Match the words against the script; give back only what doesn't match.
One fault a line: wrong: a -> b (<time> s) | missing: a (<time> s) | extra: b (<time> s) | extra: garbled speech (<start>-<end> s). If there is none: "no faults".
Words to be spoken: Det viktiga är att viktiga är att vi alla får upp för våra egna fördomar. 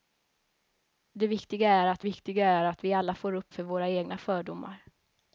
no faults